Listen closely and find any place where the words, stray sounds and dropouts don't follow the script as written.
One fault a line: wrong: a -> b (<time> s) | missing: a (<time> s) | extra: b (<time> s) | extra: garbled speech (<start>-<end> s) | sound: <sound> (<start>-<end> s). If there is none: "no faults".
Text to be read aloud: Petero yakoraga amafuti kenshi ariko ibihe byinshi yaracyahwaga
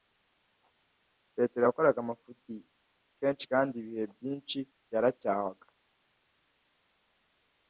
wrong: ariko -> kandi (3.5 s)